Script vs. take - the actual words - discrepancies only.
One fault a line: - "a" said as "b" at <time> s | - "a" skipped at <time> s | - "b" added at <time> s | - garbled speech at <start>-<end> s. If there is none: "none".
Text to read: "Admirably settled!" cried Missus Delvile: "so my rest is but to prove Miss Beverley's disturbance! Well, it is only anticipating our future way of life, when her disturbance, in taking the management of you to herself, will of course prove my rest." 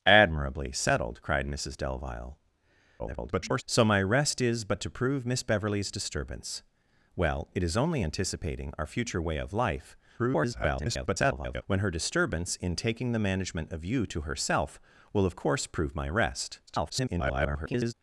- garbled speech at 3.0-3.6 s
- garbled speech at 10.2-11.6 s
- garbled speech at 16.7-17.9 s